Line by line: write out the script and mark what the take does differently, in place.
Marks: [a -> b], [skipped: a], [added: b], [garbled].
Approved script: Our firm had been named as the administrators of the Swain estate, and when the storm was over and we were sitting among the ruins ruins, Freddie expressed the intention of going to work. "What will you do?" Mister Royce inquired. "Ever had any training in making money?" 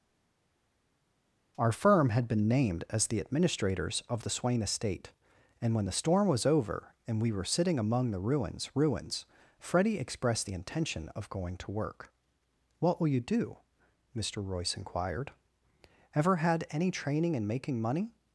Our firm had been named as the administrators of the Swain estate, and when the storm was over and we were sitting among the ruins ruins, Freddie expressed the intention of going to work. "What will you do?" Mister Royce inquired. "Ever had any training in making money?"